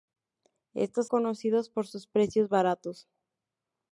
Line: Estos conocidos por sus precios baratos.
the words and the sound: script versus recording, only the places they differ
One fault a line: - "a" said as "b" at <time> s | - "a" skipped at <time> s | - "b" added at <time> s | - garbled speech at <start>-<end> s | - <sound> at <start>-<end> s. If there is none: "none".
none